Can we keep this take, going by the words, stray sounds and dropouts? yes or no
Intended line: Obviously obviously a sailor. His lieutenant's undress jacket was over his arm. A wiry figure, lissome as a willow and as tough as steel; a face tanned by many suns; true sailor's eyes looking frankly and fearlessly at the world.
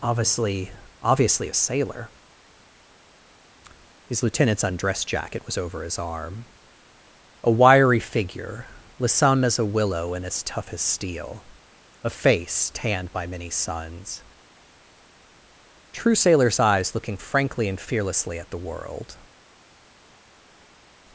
yes